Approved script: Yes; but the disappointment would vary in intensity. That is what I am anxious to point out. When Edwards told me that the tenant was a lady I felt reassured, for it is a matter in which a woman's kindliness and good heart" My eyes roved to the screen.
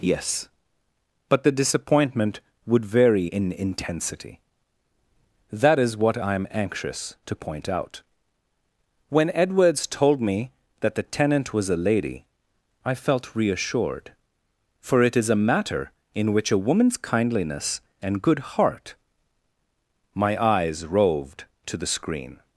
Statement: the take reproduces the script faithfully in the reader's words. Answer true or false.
true